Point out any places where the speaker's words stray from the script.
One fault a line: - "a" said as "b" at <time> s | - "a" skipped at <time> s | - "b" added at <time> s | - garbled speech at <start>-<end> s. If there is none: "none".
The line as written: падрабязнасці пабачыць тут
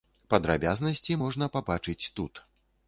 - "можна" added at 1.2 s